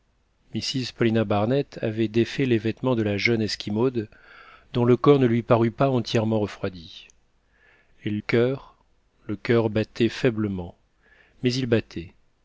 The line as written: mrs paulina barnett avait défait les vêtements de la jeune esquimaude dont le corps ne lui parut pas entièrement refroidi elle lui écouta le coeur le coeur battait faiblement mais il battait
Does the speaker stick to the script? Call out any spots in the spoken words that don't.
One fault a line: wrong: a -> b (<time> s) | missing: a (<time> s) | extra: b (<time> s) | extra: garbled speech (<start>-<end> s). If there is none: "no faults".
missing: lui écouta le (8.2 s)